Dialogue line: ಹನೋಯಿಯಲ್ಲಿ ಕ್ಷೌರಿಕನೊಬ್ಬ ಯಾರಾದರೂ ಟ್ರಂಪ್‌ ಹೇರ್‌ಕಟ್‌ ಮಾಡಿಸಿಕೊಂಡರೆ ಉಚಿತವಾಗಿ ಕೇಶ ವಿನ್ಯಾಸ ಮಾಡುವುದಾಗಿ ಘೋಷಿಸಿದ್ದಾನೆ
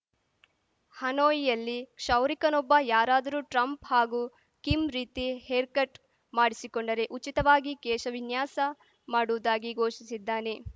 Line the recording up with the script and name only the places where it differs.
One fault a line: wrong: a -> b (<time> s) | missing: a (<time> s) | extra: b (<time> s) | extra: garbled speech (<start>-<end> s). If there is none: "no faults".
extra: ಹಾಗೂ ಕಿಮ್ ರೀತಿ (3.8 s)